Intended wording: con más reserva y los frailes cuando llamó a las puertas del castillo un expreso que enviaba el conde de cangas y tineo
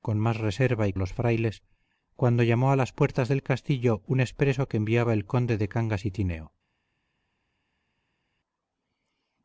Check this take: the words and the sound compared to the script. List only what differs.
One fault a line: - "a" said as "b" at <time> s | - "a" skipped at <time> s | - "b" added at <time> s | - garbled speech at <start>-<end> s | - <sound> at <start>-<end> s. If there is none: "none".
none